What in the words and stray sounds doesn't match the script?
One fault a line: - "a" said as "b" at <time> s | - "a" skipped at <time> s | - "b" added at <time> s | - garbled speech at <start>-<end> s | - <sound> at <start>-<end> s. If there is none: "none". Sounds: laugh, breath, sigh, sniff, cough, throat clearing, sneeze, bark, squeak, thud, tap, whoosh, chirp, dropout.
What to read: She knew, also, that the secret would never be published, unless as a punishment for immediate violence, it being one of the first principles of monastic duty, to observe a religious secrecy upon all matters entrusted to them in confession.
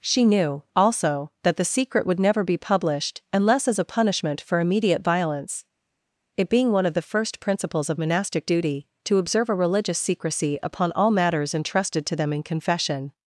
none